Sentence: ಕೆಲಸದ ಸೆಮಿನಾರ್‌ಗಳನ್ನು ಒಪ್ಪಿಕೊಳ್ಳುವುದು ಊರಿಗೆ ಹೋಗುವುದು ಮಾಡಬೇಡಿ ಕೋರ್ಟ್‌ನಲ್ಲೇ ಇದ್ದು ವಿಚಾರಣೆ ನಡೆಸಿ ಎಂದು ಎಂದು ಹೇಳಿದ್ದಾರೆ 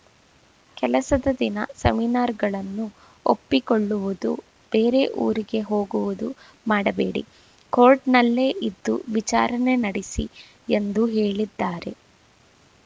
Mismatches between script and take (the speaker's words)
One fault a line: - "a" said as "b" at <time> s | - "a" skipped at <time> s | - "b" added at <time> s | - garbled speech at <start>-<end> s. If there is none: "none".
- "ದಿನ" added at 1.4 s
- "ಬೇರೆ" added at 4.7 s
- "ಎಂದು" skipped at 11.0 s